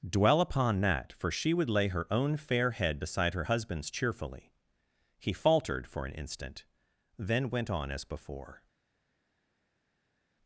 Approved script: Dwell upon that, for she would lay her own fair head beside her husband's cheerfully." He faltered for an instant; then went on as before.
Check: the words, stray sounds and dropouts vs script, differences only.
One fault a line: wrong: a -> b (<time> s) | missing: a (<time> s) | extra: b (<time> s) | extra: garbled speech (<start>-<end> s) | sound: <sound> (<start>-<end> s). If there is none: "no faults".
no faults